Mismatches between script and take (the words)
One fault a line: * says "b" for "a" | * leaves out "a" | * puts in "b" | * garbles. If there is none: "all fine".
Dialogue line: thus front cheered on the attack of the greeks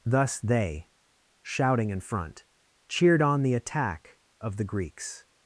* puts in "they shouting in"